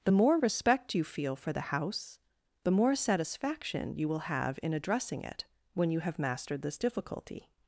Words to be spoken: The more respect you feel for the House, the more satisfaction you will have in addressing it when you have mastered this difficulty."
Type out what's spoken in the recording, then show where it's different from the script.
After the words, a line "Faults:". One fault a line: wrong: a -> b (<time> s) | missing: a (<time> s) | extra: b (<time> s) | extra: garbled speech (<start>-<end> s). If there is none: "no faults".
The more respect you feel for the House, the more satisfaction you will have in addressing it when you have mastered this difficulty."
Faults:
no faults